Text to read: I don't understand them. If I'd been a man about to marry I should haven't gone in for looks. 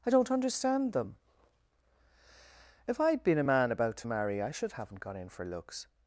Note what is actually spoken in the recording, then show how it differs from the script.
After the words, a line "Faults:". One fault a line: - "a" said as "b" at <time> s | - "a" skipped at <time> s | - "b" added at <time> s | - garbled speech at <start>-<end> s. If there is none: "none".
I don't understand them. If I'd been a man about to marry I should haven't gone in for looks.
Faults:
none